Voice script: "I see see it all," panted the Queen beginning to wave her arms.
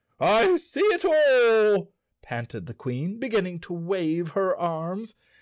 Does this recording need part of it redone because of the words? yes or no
yes